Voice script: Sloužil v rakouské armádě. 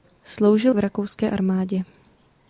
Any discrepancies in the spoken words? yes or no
no